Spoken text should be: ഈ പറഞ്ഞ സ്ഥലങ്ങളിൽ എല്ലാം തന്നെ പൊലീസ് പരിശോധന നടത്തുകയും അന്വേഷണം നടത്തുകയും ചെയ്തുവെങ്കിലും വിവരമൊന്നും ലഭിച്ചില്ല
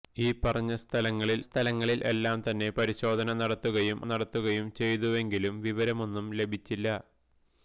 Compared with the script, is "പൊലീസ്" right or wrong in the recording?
wrong